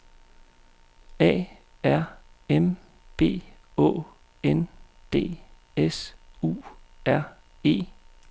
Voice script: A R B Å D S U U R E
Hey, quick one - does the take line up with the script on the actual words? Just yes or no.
no